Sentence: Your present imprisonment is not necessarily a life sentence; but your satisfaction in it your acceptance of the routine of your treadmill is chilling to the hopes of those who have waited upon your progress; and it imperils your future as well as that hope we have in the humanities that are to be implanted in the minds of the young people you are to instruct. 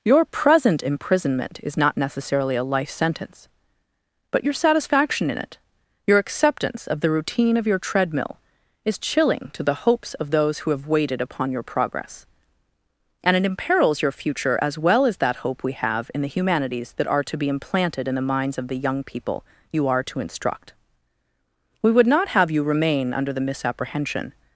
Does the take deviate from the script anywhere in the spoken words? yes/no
yes